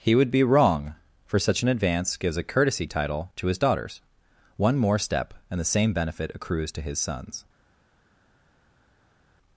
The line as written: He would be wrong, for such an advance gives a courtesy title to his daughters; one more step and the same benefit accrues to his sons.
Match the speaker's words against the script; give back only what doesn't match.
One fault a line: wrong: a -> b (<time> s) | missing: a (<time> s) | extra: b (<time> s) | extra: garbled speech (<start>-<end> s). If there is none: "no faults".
no faults